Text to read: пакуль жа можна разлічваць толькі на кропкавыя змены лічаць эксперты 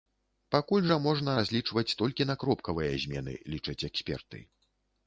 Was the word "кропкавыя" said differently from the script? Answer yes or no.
no